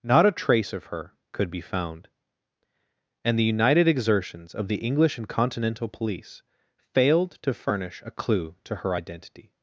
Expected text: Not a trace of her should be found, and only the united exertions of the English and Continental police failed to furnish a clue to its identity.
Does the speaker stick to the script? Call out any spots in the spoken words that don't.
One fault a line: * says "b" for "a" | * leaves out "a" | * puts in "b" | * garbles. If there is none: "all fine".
* says "could" for "should"
* leaves out "only"
* says "her" for "its"